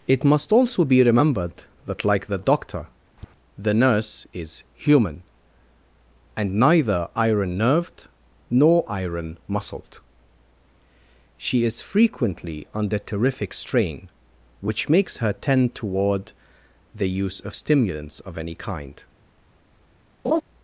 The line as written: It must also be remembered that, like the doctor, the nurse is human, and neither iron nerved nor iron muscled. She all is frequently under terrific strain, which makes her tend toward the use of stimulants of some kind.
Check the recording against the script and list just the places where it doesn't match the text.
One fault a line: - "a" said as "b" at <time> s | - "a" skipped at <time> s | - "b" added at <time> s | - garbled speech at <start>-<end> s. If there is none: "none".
- "all" skipped at 11.6 s
- "some" said as "any" at 18.4 s